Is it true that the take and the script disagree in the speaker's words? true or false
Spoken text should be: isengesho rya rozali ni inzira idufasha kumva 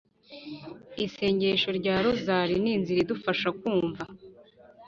false